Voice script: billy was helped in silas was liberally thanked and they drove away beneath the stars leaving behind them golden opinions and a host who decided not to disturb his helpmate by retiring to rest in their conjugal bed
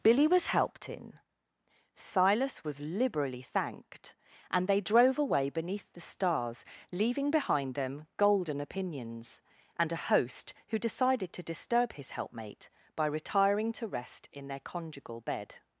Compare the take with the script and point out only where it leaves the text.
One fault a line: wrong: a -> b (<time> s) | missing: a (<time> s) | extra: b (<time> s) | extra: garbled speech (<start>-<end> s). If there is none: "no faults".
missing: not (11.3 s)